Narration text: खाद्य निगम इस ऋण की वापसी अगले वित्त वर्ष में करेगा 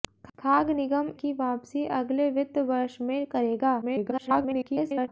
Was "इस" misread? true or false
true